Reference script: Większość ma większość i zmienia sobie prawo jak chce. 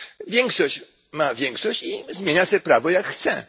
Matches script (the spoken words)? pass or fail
pass